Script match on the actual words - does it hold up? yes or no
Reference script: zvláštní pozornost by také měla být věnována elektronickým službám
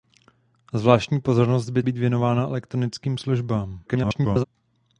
no